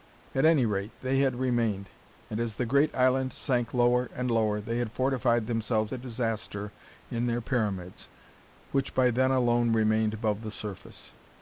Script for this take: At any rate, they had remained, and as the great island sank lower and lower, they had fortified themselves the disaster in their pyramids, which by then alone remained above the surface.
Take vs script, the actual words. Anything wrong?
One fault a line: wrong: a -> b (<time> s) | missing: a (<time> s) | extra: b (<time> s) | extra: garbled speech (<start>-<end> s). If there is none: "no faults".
no faults